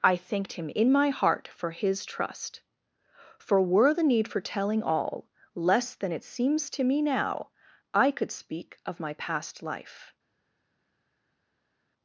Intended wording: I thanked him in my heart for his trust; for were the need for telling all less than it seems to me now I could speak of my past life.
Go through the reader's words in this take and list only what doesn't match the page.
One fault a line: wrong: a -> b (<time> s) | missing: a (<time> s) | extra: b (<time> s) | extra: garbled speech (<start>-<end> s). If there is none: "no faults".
no faults